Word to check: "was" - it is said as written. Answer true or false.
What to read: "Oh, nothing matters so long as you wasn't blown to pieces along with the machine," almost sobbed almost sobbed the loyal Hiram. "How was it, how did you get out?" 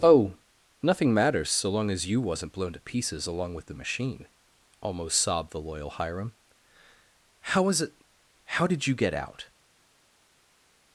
true